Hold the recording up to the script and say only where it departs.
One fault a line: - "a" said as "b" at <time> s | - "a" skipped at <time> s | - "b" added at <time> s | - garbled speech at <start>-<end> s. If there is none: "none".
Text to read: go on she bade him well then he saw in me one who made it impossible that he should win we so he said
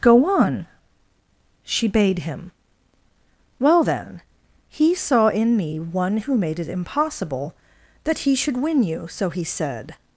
- "we" said as "you" at 8.8 s